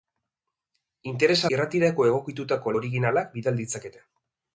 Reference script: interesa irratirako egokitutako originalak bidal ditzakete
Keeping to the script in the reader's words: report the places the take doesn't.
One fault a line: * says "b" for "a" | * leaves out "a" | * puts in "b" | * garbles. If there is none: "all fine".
all fine